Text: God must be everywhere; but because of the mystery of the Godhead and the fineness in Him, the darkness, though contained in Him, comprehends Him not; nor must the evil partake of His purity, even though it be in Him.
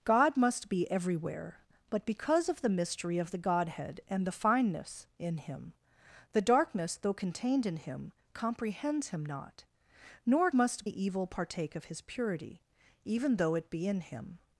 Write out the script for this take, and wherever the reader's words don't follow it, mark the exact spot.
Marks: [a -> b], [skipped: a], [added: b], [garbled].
God must be everywhere; but because of the mystery of the Godhead and the fineness in Him, the darkness, though contained in Him, comprehends Him not; nor must the evil partake of His purity, even though it be in Him.